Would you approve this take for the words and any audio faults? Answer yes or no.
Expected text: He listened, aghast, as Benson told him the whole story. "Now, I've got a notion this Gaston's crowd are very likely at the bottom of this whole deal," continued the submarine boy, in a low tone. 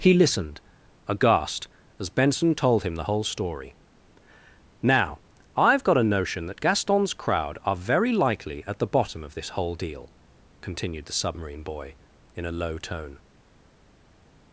no